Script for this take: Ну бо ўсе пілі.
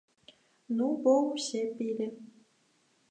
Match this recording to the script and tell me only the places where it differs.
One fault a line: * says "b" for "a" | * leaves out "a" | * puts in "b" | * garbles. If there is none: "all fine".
all fine